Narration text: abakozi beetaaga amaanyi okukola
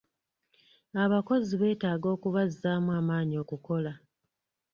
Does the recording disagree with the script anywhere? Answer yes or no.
yes